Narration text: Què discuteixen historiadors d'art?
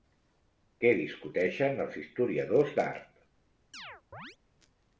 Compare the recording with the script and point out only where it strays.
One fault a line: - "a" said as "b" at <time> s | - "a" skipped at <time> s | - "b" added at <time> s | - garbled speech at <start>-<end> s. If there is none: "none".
- "els" added at 1.9 s